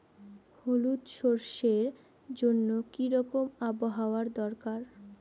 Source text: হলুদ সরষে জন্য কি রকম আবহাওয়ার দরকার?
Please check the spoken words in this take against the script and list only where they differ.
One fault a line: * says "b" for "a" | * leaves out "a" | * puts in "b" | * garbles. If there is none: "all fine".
all fine